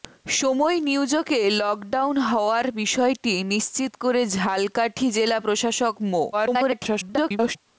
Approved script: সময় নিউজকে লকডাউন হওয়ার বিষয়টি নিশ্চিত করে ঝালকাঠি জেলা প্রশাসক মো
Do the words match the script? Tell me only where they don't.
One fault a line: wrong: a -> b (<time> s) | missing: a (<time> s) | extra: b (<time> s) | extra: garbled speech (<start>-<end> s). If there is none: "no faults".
extra: garbled speech (6.3-7.6 s)